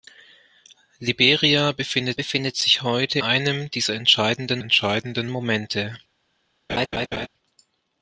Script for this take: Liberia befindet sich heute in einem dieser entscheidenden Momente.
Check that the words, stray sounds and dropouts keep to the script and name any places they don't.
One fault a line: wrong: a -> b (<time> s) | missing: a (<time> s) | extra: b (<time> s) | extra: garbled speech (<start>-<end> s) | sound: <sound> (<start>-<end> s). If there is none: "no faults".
extra: befindet (2.1 s)
missing: in (3.2 s)
extra: entscheidenden (4.6 s)
sound: laugh (6.7-7.3 s)